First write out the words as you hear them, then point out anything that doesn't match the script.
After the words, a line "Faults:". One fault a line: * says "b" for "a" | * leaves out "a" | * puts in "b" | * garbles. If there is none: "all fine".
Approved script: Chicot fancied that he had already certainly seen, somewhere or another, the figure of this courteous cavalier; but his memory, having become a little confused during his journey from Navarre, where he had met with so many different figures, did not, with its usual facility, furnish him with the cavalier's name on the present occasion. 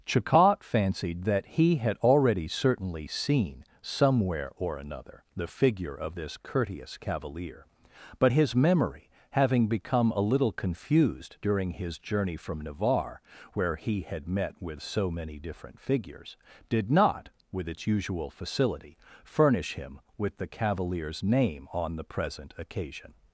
Chicot fancied that he had already certainly seen, somewhere or another, the figure of this courteous cavalier; but his memory, having become a little confused during his journey from Navarre, where he had met with so many different figures, did not, with its usual facility, furnish him with the cavalier's name on the present occasion.
Faults:
all fine